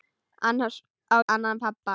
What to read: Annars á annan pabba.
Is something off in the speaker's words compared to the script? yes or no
no